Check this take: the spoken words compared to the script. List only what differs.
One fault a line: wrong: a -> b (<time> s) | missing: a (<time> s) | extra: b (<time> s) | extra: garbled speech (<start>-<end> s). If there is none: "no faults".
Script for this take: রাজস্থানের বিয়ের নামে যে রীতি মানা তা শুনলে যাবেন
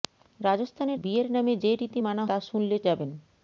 no faults